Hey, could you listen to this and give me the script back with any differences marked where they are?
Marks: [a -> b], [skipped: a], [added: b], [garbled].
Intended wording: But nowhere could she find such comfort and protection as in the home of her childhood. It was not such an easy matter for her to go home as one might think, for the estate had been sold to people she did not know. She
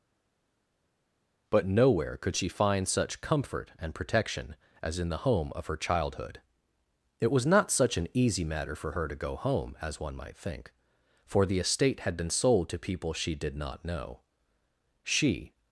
But nowhere could she find such comfort and protection as in the home of her childhood. It was not such an easy matter for her to go home as one might think, for the estate had been sold to people she did not know. She